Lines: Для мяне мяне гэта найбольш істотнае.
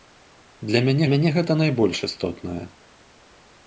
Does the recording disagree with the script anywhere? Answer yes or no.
no